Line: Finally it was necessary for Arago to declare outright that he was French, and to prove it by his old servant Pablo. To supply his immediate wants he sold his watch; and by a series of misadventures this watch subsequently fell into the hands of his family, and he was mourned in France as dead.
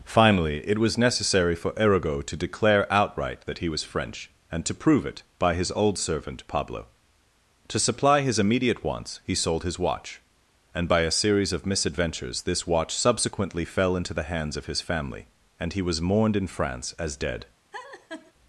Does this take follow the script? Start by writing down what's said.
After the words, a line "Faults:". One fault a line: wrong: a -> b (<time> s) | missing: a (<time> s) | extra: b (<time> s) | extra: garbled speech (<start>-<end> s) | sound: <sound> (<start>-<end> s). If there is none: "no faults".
Finally it was necessary for Arago to declare outright that he was French, and to prove it by his old servant Pablo. To supply his immediate wants he sold his watch; and by a series of misadventures this watch subsequently fell into the hands of his family, and he was mourned in France as dead.
Faults:
sound: laugh (17.7-18.3 s)